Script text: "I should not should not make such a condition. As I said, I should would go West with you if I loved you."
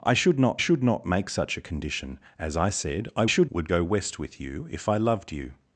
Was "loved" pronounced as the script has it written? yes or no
yes